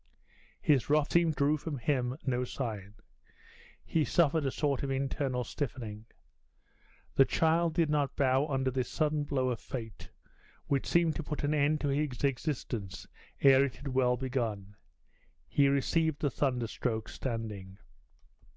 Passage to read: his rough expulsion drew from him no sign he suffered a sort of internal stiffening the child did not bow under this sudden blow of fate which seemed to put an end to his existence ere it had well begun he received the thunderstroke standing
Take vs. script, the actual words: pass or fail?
fail